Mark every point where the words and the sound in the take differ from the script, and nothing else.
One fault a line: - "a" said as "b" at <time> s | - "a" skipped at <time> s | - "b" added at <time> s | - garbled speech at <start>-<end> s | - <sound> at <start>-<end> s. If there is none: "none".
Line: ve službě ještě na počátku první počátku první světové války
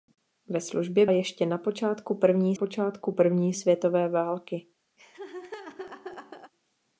- laugh at 5.0-6.5 s